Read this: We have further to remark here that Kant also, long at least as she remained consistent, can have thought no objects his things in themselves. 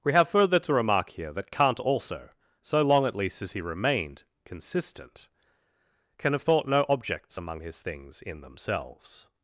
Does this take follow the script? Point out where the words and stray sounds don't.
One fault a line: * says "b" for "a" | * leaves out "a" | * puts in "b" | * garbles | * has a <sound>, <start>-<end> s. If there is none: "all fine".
* puts in "so"
* says "he" for "she"
* puts in "among"